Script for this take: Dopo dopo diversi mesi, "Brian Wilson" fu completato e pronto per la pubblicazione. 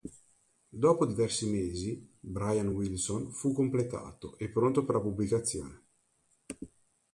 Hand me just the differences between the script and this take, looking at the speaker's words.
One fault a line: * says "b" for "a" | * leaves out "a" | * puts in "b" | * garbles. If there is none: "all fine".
* leaves out "dopo"